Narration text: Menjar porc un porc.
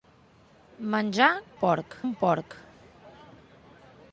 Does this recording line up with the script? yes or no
yes